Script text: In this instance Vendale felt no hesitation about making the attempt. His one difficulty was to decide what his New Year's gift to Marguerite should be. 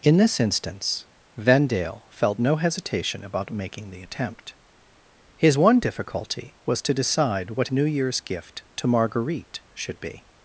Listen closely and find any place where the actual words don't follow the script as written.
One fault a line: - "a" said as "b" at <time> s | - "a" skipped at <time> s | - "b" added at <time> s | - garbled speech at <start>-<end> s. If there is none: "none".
- "his" skipped at 7.7 s